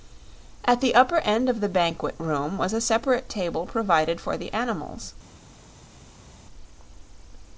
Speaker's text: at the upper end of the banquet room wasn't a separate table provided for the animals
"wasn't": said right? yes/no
no